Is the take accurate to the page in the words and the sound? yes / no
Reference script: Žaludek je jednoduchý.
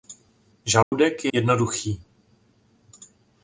no